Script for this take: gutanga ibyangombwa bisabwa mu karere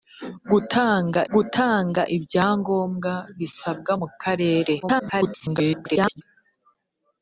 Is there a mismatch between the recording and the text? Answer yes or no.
yes